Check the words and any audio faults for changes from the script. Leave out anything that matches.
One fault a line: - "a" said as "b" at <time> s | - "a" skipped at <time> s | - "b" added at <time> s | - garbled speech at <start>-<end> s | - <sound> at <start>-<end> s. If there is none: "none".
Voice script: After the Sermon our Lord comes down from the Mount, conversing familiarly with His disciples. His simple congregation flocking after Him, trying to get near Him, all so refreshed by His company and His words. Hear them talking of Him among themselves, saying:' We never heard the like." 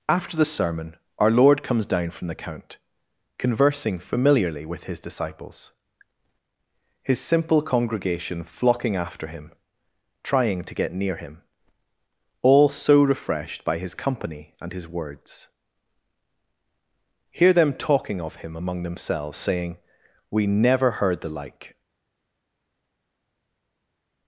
- "Mount" said as "Count" at 2.3 s